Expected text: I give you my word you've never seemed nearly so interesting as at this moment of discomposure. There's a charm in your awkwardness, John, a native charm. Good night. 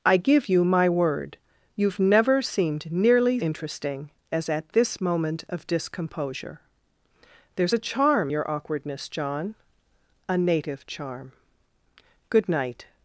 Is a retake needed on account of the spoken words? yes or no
yes